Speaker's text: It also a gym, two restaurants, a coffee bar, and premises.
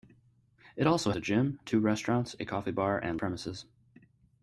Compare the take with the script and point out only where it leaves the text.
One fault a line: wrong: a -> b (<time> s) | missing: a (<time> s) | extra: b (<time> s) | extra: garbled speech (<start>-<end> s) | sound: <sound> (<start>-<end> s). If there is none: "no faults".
no faults